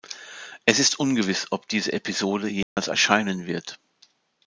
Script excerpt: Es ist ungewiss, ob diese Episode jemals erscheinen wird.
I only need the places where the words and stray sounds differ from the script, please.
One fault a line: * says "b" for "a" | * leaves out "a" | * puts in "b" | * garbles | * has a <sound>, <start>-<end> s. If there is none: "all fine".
* has a dropout, 2.6-2.8 s